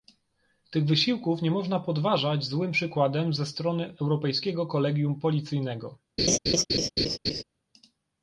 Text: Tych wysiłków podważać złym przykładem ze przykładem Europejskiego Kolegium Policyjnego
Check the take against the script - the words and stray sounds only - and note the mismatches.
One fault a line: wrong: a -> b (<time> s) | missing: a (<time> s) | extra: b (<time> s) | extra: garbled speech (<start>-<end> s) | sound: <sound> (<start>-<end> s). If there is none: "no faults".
extra: nie można (1.4 s)
wrong: przykładem -> strony (3.5 s)
sound: laugh (6.2-7.4 s)